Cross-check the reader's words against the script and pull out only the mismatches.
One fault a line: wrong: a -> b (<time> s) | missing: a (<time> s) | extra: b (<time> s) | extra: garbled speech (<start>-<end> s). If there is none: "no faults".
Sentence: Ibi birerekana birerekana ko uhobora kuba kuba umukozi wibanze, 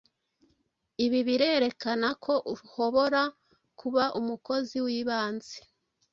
missing: birerekana (2.1 s)
missing: kuba (4.0 s)